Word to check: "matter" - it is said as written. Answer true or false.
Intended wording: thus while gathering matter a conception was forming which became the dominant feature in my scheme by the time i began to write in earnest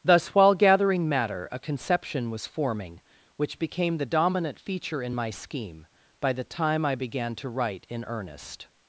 true